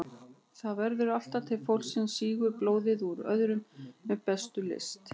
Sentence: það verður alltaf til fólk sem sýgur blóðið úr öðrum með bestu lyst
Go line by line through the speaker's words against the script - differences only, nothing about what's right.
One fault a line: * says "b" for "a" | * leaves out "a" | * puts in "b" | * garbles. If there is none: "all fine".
all fine